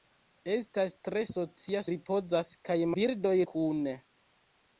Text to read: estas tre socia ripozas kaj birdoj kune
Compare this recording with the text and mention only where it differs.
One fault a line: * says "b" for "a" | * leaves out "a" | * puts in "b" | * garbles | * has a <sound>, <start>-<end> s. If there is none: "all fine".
all fine